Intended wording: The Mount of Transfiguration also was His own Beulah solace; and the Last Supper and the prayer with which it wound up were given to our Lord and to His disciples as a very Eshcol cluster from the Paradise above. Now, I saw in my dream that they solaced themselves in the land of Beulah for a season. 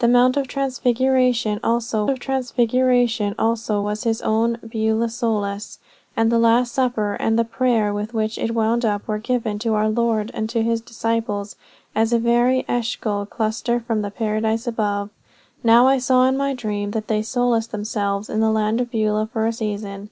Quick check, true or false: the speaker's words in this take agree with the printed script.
false